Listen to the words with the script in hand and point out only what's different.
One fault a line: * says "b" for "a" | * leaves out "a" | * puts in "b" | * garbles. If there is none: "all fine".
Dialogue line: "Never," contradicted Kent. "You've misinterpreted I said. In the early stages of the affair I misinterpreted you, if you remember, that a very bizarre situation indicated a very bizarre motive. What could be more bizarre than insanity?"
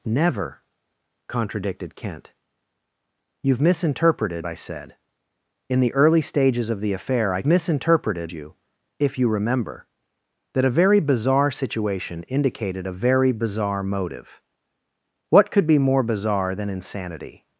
all fine